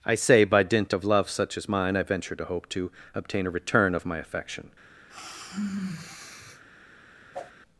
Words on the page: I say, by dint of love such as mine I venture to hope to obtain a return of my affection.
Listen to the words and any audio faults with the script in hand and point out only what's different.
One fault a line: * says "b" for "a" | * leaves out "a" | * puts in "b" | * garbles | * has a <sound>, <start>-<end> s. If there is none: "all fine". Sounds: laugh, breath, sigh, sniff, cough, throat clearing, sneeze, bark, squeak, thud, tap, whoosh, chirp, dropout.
* has a sigh, 5.1-6.6 s
* has a whoosh, 7.3-7.5 s